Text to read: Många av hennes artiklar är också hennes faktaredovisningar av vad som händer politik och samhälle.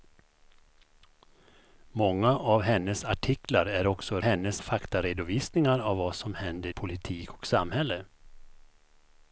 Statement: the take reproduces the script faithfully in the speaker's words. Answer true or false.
true